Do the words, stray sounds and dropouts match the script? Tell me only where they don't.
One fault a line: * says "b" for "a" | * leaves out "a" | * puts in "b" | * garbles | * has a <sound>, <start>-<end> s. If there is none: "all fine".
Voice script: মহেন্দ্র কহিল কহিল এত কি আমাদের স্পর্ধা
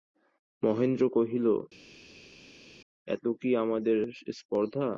* leaves out "কহিল"